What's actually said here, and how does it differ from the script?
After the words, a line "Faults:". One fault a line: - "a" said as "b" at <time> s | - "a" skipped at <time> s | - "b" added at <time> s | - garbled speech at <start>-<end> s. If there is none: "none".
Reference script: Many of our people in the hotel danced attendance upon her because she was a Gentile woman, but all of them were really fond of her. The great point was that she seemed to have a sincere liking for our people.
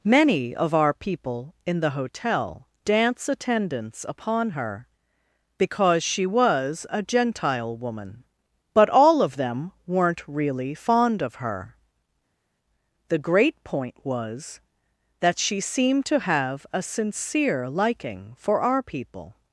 Many of our people in the hotel dance attendance upon her because she was a Gentile woman, but all of them weren't really fond of her. The great point was that she seemed to have a sincere liking for our people.
Faults:
- "danced" said as "dance" at 2.9 s
- "were" said as "weren't" at 9.9 s